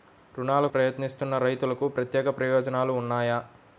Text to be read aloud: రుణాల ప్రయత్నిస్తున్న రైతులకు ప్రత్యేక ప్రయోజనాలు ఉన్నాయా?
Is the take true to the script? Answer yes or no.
yes